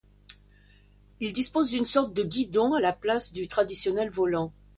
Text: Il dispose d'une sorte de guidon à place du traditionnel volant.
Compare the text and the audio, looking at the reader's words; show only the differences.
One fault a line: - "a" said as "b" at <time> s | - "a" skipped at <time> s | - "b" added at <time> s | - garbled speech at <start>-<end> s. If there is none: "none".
- "la" added at 2.8 s